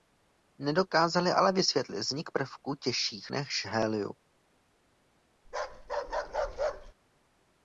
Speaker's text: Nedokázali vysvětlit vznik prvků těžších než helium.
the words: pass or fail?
fail